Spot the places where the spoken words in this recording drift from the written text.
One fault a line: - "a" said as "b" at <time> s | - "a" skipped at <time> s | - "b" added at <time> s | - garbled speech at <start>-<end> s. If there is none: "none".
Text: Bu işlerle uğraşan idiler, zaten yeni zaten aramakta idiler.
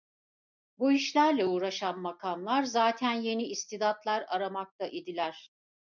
- "idiler" said as "makamlar" at 2.0 s
- "zaten" said as "istidatlar" at 3.4 s